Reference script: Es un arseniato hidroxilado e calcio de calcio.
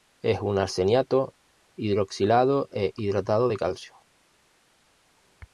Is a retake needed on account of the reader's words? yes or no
yes